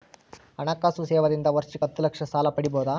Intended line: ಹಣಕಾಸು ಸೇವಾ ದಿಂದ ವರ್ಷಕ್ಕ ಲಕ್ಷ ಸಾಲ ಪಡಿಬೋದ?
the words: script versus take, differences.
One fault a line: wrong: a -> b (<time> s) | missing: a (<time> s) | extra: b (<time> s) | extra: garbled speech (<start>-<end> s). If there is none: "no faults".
extra: ಹತ್ತ (1.8 s)